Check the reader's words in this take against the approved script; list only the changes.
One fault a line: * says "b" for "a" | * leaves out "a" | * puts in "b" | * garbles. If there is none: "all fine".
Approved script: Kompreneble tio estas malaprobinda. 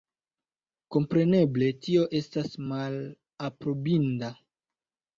all fine